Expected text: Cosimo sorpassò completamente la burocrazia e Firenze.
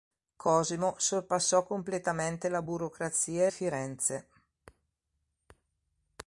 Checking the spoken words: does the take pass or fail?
pass